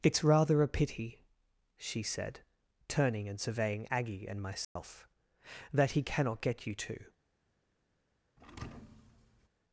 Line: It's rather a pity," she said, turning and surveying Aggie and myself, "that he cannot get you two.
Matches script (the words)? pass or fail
pass